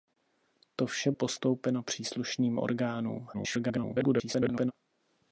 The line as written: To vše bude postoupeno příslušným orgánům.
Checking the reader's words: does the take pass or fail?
fail